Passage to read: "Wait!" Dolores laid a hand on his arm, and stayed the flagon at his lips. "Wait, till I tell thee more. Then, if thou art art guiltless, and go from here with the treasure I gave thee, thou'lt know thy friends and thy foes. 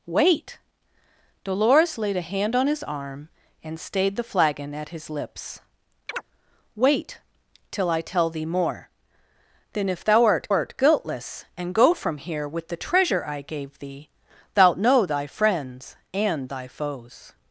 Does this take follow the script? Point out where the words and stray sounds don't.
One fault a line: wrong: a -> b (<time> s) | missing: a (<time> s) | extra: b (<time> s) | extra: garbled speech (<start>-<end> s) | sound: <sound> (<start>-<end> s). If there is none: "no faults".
sound: chirp (6.1-6.2 s)